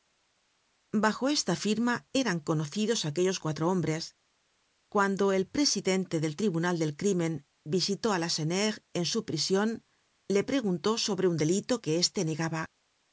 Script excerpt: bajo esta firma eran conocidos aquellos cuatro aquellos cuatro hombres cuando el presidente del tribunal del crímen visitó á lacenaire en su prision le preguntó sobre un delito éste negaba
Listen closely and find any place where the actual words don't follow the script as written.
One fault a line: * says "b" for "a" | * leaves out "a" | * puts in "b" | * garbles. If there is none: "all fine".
* leaves out "aquellos cuatro"
* puts in "que"